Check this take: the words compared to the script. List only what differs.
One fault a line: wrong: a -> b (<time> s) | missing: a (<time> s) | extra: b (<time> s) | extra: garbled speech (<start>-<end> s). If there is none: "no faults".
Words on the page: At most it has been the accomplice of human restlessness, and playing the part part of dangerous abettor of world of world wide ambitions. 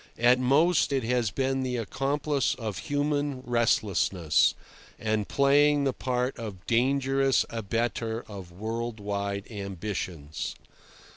missing: part (6.4 s)
missing: of world (9.0 s)